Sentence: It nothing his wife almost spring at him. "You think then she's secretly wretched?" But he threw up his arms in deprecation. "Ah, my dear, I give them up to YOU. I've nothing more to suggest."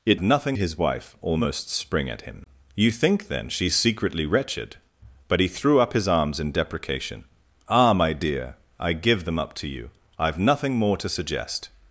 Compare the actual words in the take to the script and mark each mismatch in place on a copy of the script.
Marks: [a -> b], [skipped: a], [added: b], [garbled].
It nothing his wife almost spring at him. "You think then she's secretly wretched?" But he threw up his arms in deprecation. "Ah, my dear, I give them up to YOU. I've nothing more to suggest."